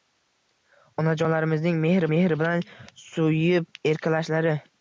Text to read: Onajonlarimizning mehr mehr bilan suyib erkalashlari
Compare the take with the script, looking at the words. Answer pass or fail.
pass